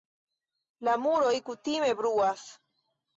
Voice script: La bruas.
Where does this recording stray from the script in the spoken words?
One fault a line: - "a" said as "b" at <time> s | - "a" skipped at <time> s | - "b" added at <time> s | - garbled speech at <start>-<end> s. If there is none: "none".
- "muroj kutime" added at 1.0 s